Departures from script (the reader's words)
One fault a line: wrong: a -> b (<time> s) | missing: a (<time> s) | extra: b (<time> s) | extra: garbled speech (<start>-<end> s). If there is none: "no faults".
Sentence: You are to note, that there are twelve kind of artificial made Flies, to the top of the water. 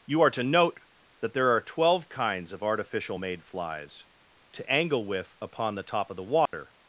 wrong: kind -> kinds (2.1 s)
extra: angle with upon (4.7 s)